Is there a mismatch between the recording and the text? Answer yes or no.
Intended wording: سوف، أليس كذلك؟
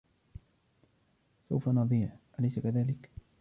yes